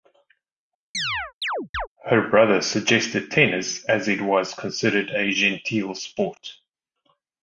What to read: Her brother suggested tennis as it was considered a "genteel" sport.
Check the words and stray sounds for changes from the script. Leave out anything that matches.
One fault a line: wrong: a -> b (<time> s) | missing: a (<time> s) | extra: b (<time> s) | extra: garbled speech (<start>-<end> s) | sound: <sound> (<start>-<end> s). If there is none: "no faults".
sound: chirp (0.9-1.9 s)